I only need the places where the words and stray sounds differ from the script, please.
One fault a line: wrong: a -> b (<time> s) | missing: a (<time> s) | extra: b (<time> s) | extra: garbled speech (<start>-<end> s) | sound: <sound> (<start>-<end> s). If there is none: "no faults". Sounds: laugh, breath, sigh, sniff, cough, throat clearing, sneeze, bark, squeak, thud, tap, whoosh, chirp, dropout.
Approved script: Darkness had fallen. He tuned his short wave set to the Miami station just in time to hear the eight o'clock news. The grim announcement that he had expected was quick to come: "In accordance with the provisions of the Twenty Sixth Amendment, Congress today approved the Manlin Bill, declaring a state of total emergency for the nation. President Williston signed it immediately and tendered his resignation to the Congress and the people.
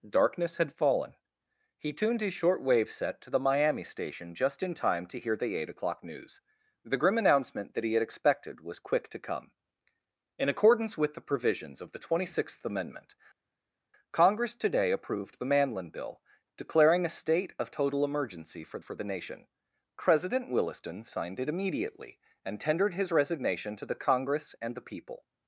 extra: for (18.8 s)